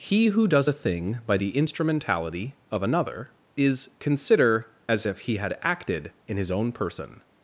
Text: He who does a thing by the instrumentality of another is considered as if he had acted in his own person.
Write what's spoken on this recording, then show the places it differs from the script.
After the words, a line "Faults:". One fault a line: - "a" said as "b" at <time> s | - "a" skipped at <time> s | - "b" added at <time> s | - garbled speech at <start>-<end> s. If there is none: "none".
He who does a thing by the instrumentality of another is consider as if he had acted in his own person.
Faults:
- "considered" said as "consider" at 4.0 s